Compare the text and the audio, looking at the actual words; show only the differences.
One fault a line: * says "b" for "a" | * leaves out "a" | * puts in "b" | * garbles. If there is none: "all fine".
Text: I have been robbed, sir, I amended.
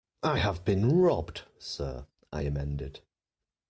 all fine